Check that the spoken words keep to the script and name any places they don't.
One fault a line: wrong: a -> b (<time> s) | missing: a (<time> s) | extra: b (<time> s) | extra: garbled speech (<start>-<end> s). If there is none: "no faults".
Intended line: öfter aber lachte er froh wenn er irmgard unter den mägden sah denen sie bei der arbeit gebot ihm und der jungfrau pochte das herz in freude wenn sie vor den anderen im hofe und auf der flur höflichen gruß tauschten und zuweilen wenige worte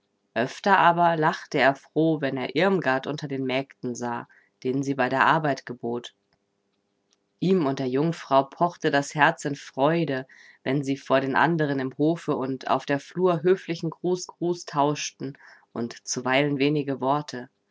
extra: gruß (14.3 s)